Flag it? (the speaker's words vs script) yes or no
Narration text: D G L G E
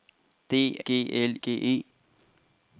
no